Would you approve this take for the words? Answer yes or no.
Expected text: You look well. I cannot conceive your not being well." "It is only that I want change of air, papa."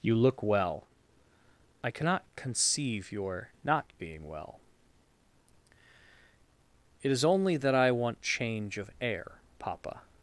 yes